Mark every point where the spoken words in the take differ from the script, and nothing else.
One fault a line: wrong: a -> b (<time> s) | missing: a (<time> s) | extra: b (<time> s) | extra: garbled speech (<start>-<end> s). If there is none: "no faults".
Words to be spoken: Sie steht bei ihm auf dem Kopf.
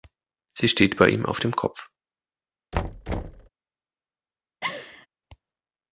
no faults